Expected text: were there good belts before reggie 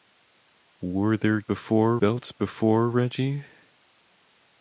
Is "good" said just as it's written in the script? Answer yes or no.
no